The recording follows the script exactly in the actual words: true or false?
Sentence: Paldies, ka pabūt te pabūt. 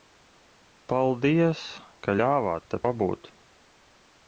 false